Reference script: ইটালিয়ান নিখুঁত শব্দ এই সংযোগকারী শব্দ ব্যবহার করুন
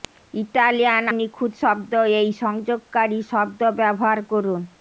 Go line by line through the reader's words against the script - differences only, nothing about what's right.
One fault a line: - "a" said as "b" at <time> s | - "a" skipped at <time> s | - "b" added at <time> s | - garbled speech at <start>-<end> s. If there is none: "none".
none